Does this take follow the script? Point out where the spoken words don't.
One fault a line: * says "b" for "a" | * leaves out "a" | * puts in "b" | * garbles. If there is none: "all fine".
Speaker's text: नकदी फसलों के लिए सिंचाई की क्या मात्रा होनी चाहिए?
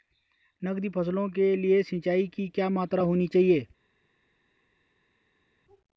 all fine